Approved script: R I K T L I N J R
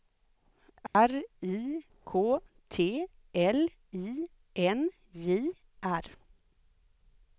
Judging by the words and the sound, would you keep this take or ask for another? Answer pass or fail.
fail